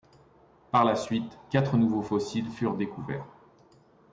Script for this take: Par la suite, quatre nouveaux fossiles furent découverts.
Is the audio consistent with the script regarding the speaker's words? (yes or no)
yes